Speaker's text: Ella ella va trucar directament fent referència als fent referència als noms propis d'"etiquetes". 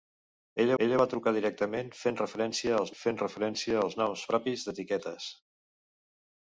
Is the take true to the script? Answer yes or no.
yes